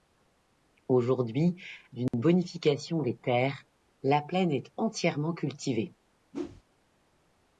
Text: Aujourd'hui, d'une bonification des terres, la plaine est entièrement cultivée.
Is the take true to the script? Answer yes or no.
yes